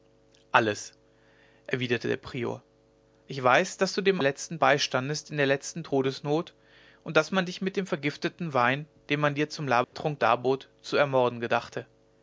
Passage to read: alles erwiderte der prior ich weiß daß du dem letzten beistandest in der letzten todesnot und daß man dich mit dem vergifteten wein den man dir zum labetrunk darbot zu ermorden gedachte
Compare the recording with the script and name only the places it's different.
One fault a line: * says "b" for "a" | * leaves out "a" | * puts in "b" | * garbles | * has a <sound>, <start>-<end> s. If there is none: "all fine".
* has a dropout, 9.8-9.9 s